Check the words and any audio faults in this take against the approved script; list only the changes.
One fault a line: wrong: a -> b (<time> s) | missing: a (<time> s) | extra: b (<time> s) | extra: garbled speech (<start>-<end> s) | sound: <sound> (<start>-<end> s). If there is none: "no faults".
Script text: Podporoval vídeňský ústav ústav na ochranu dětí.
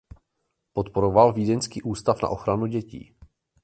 missing: ústav (2.2 s)